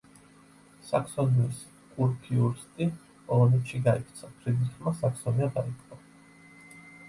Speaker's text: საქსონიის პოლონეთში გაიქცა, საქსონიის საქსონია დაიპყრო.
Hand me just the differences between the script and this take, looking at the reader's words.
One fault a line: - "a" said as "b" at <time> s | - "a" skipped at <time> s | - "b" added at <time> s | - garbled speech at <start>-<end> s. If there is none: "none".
- "კურფიურსტი" added at 2.0 s
- "საქსონიის" said as "ფრიდრიხმა" at 4.4 s